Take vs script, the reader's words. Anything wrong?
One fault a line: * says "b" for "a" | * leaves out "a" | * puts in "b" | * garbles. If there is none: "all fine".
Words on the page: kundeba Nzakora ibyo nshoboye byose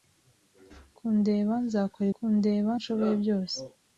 * says "kundeba" for "ibyo"